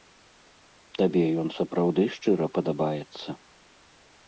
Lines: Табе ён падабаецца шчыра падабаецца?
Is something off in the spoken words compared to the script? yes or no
yes